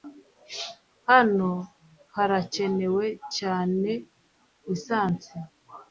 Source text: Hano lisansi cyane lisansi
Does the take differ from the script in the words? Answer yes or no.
yes